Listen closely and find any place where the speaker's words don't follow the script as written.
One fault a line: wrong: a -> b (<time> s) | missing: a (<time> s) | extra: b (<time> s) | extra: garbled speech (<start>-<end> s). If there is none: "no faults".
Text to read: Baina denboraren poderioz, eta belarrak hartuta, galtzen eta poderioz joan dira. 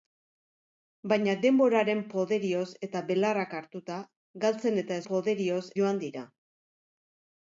no faults